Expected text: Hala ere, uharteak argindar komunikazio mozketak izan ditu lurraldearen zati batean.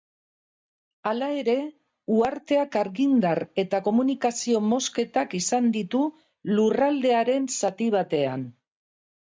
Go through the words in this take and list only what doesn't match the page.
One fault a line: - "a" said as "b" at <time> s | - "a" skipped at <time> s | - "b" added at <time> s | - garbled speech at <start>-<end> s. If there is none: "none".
- "eta" added at 3.6 s